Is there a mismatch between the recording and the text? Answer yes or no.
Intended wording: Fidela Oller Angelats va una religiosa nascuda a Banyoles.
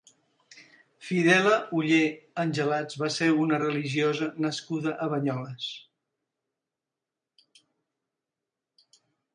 yes